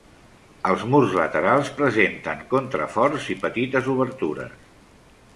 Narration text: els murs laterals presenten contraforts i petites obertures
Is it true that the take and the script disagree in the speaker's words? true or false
false